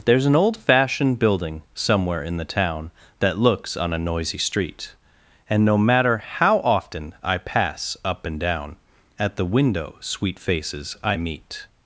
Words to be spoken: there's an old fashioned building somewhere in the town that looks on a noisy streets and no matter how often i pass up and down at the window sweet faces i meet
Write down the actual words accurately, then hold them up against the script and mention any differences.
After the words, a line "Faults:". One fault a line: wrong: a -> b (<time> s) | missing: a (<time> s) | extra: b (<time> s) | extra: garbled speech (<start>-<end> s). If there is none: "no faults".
there's an old fashioned building somewhere in the town that looks on a noisy street and no matter how often i pass up and down at the window sweet faces i meet
Faults:
wrong: streets -> street (4.4 s)